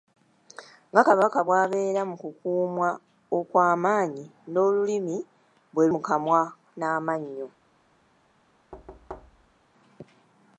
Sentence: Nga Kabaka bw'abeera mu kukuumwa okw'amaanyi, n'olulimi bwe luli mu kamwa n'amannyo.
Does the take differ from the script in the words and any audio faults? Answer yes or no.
yes